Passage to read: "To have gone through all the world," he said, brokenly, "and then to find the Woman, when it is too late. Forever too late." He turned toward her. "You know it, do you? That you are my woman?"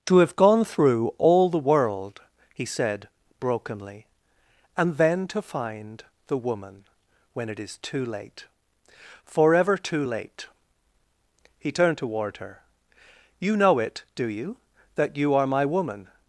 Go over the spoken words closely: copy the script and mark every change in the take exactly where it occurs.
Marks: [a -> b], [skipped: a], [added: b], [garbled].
"To have gone through all the world," he said, brokenly, "and then to find the Woman, when it is too late. Forever too late." He turned toward her. "You know it, do you? That you are my woman?"